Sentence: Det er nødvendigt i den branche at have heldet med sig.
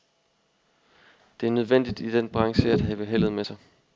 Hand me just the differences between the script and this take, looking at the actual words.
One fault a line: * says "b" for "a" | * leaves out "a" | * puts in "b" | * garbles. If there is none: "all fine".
all fine